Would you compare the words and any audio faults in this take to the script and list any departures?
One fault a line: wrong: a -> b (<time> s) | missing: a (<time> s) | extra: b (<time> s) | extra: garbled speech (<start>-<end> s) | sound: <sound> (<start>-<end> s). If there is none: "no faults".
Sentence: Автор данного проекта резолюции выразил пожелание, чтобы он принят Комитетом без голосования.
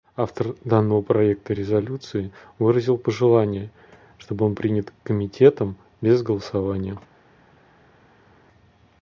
no faults